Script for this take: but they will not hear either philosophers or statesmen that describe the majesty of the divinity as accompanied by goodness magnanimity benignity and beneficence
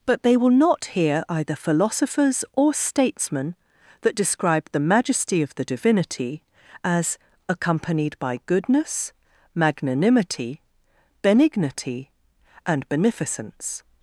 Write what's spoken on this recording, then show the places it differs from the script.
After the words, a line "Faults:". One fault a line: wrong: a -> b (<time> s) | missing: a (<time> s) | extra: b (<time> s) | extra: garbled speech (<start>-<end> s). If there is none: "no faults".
but they will not hear either philosophers or statesmen that describe the majesty of the divinity as accompanied by goodness magnanimity benignity and beneficence
Faults:
no faults